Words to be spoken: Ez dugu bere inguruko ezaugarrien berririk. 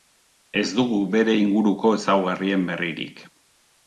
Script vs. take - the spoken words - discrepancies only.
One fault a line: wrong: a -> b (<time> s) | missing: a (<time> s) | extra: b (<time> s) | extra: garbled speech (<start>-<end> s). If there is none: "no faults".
no faults